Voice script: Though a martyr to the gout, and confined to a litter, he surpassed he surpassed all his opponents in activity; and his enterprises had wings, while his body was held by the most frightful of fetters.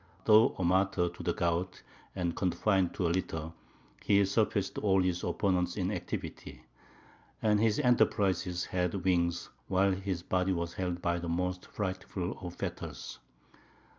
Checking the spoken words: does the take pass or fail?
fail